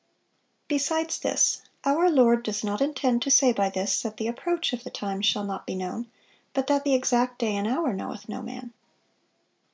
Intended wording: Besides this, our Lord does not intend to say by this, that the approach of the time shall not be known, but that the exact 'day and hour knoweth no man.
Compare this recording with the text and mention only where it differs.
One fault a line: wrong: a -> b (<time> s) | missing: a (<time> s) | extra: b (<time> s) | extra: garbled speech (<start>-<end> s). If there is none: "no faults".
no faults